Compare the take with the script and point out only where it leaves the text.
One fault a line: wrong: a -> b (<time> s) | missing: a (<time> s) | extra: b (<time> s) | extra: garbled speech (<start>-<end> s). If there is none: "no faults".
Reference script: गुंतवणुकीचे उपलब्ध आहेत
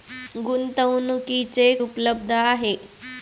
no faults